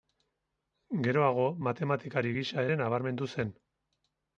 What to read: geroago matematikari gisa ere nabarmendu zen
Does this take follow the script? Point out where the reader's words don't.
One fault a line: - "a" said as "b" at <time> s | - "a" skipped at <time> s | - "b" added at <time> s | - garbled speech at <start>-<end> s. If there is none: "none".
none